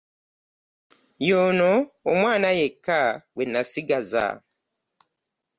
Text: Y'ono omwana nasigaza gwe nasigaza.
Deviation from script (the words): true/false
true